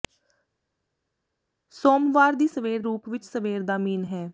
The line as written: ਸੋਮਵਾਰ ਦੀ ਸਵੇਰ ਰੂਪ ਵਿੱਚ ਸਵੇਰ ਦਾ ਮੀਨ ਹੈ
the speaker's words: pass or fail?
pass